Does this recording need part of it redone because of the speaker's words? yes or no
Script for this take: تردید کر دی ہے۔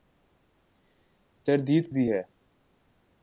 yes